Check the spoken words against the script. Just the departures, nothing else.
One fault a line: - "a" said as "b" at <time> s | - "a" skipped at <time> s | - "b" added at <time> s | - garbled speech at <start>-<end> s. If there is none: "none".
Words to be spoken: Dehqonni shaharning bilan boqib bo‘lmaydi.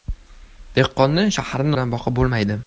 none